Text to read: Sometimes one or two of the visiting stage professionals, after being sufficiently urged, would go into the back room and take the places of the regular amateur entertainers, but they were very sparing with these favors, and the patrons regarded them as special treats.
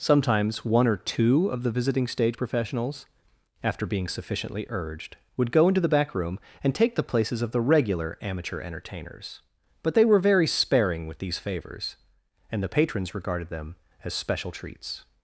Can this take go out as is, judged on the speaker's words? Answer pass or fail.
pass